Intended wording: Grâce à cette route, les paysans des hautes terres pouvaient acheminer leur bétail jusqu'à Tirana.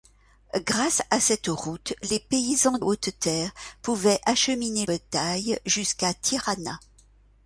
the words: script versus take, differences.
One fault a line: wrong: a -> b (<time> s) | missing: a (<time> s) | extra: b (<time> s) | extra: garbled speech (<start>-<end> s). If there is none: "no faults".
missing: des (2.8 s)
missing: leur (4.9 s)